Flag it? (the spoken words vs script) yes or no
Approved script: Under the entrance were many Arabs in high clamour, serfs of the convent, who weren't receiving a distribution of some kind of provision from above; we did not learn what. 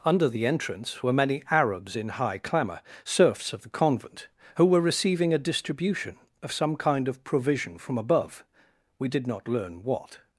yes